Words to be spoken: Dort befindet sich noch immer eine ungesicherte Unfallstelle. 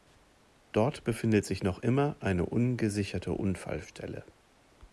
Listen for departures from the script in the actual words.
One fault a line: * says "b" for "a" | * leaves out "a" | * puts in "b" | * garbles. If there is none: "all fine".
all fine